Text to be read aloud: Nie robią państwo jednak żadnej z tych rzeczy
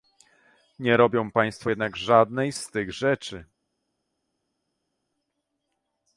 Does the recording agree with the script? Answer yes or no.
yes